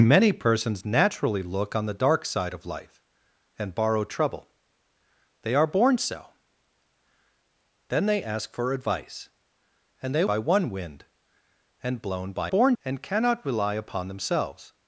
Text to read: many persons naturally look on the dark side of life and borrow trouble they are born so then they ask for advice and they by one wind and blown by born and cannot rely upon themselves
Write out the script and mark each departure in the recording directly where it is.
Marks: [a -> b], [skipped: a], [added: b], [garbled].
many persons naturally look on the dark side of life and borrow trouble they are born so then they ask for advice and they by one wind and blown by born and cannot rely upon themselves